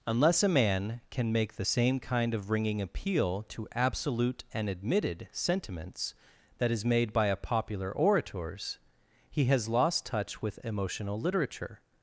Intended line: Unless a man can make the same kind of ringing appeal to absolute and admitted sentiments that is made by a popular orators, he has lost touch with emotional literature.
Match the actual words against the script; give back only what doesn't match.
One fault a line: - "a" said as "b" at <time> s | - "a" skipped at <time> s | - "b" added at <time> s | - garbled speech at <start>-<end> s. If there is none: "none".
none